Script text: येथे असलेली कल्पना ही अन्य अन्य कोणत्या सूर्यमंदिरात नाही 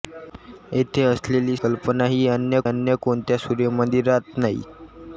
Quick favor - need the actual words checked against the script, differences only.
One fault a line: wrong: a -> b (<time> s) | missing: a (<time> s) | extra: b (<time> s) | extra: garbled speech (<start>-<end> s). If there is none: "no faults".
no faults